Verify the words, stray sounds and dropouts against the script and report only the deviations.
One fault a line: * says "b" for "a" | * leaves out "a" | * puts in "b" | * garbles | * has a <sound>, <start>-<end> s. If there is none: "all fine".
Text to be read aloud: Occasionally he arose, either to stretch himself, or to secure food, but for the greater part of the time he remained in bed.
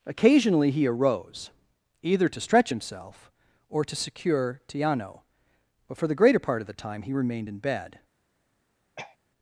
* says "tiano" for "food"
* has a throat clearing, 9.0-9.2 s